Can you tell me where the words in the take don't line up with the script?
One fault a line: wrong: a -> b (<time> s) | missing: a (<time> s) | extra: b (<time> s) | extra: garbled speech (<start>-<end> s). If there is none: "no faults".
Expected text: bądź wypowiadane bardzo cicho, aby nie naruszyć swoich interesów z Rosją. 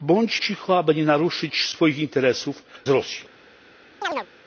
missing: wypowiadane bardzo (0.4 s)
missing: z (2.6 s)